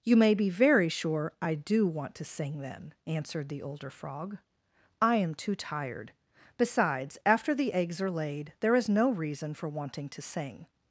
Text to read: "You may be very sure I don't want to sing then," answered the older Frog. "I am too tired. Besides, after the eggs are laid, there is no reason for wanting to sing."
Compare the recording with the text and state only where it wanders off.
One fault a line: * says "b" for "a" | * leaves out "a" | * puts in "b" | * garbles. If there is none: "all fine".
* says "do" for "don't"